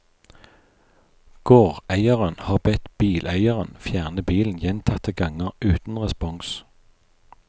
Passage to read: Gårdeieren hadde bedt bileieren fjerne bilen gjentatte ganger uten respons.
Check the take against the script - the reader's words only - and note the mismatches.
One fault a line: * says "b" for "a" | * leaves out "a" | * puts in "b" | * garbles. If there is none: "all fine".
* says "har" for "hadde"